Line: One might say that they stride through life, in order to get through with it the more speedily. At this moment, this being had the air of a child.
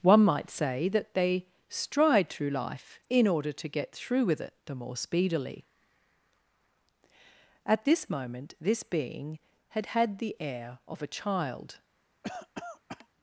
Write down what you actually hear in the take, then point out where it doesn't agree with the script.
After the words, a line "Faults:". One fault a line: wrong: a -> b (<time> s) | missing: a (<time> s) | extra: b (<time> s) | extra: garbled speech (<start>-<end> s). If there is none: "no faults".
One might say that they stride through life, in order to get through with it the more speedily. At this moment, this being had had the air of a child.
Faults:
extra: had (9.9 s)